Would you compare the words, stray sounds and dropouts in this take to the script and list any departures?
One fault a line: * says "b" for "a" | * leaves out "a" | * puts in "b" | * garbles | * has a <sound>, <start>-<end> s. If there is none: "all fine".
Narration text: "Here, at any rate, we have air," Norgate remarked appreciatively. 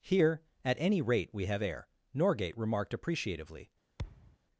* has a thud, 4.0-4.4 s